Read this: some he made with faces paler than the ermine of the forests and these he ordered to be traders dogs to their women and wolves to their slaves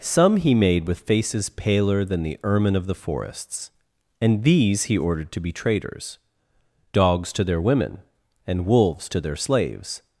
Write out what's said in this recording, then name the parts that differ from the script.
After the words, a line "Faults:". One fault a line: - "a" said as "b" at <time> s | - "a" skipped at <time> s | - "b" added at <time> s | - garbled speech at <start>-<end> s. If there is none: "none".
some he made with faces paler than the ermine of the forests and these he ordered to be traders dogs to their women and wolves to their slaves
Faults:
none